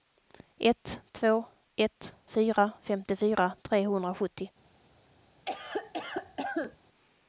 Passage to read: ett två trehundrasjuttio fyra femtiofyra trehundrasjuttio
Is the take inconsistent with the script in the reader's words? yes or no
yes